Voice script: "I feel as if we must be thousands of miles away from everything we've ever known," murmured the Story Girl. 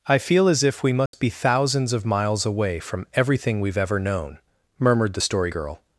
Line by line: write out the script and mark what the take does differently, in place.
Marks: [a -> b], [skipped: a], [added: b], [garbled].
"I feel as if we must be thousands of miles away from everything we've ever known," murmured the Story Girl.